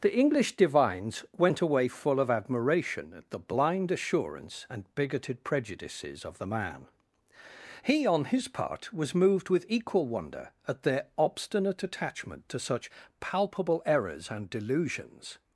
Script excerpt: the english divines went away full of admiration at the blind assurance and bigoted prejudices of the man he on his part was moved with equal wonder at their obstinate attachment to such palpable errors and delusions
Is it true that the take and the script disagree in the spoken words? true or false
false